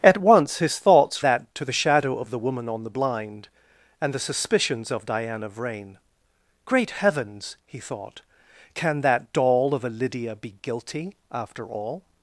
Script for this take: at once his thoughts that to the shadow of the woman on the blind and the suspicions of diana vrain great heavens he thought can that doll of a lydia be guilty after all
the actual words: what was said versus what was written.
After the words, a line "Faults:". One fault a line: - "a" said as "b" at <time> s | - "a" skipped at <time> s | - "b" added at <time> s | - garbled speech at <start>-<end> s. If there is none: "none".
at once his thoughts that to the shadow of the woman on the blind and the suspicions of diana vrain great heavens he thought can that doll of a lydia be guilty after all
Faults:
none